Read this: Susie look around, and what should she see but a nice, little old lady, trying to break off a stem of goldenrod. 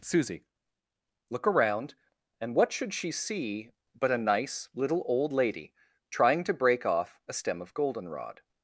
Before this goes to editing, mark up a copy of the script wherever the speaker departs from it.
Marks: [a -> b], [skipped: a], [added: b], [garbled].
Susie look around, and what should she see but a nice, little old lady, trying to break off a stem of goldenrod.